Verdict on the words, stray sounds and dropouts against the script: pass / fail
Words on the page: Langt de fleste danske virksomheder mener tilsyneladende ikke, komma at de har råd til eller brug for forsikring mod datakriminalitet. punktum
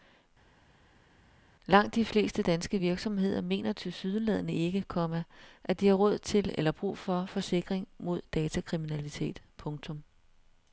pass